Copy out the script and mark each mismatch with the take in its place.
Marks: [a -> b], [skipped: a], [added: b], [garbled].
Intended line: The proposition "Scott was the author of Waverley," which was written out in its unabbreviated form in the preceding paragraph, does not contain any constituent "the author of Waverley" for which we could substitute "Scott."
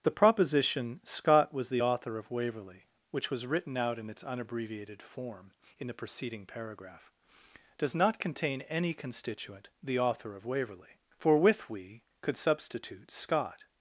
The proposition "Scott was the author of Waverley," which was written out in its unabbreviated form in the preceding paragraph, does not contain any constituent "the author of Waverley" for [which -> with] we could substitute "Scott."